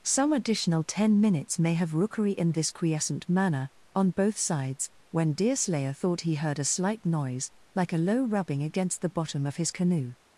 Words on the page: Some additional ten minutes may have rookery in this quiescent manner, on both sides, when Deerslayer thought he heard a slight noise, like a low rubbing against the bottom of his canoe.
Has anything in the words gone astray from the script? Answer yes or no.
no